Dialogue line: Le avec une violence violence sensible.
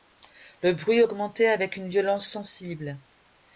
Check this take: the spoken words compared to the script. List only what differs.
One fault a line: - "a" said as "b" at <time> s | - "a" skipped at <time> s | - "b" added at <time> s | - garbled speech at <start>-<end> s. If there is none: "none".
- "bruit augmentait" added at 0.7 s
- "violence" skipped at 2.3 s